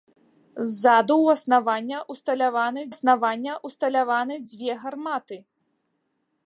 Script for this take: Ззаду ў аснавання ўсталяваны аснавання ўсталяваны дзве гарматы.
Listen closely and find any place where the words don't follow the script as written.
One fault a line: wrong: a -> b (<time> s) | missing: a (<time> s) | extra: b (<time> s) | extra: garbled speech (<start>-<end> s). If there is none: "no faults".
no faults